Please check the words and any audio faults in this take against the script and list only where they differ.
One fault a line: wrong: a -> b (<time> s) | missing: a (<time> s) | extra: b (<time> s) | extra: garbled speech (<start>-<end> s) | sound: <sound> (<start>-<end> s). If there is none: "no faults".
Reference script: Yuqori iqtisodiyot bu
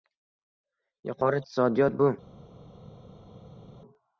no faults